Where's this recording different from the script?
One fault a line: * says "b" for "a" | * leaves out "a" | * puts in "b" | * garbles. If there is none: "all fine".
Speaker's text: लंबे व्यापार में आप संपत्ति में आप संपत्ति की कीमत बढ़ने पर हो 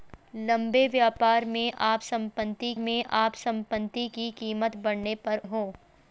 all fine